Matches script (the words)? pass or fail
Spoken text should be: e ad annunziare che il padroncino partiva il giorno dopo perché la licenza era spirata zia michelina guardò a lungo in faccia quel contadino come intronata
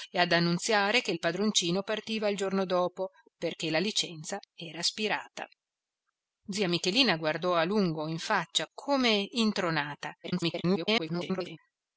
fail